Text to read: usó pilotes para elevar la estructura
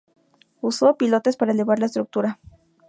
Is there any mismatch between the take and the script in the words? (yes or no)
no